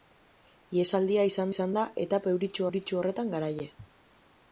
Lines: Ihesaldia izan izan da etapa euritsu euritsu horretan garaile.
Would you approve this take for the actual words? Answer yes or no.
yes